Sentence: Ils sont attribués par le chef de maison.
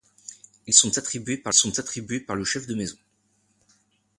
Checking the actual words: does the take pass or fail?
fail